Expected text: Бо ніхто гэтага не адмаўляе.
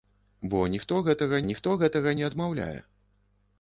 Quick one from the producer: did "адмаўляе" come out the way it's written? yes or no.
yes